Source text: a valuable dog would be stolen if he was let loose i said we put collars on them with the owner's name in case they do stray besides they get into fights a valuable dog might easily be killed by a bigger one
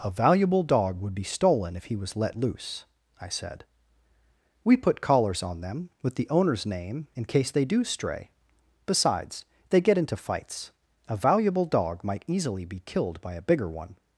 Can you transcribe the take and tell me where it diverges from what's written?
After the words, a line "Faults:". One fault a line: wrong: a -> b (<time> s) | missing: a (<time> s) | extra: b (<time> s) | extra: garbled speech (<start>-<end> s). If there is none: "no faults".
a valuable dog would be stolen if he was let loose i said we put collars on them with the owner's name in case they do stray besides they get into fights a valuable dog might easily be killed by a bigger one
Faults:
no faults